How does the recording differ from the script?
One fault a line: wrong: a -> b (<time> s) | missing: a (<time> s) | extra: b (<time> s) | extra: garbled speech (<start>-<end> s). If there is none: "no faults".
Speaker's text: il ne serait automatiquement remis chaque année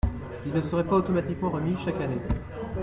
extra: pas (0.8 s)